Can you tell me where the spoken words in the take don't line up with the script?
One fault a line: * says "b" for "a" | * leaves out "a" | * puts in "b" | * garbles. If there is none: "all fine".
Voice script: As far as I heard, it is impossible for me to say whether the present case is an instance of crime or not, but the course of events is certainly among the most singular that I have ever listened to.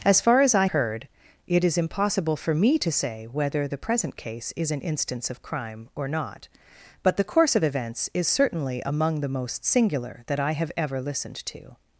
all fine